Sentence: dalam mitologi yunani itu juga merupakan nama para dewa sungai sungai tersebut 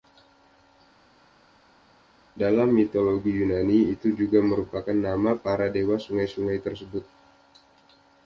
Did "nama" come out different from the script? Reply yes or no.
no